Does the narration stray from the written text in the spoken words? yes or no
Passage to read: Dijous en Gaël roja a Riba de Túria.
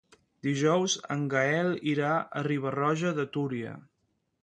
yes